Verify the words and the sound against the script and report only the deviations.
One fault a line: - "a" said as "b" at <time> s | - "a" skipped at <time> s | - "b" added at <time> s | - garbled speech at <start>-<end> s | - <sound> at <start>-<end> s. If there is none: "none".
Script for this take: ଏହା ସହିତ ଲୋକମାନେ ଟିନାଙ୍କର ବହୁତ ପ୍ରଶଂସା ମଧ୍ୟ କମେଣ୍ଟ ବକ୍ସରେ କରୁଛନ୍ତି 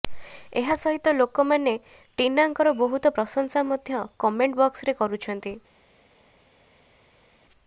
none